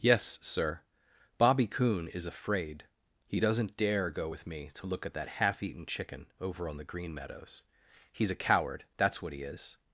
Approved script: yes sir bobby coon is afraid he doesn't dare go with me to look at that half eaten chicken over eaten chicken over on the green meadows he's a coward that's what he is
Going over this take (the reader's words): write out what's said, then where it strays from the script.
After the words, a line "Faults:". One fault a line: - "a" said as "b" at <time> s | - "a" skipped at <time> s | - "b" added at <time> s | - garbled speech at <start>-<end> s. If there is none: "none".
yes sir bobby coon is afraid he doesn't dare go with me to look at that half eaten chicken over on the green meadows he's a coward that's what he is
Faults:
- "eaten chicken over" skipped at 6.7 s